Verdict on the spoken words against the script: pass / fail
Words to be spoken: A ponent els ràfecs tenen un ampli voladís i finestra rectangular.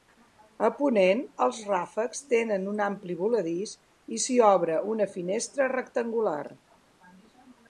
fail